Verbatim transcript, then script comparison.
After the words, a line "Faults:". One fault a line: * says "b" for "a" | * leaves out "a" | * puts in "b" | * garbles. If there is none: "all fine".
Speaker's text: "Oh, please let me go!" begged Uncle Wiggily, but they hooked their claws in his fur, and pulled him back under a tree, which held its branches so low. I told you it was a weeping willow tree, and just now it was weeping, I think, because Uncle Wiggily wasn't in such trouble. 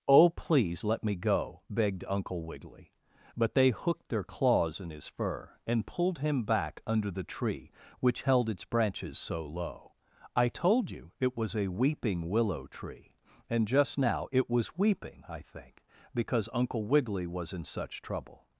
"Oh, please let me go!" begged Uncle Wiggily, but they hooked their claws in his fur, and pulled him back under the tree, which held its branches so low. I told you it was a weeping willow tree, and just now it was weeping, I think, because Uncle Wiggily was in such trouble.
Faults:
* says "the" for "a"
* says "was" for "wasn't"